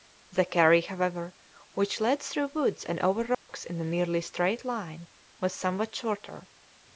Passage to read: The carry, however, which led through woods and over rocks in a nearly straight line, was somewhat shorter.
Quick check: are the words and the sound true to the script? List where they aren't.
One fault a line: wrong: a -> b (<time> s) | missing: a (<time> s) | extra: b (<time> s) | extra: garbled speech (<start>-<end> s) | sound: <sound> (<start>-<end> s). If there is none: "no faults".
sound: dropout (3.3-3.5 s)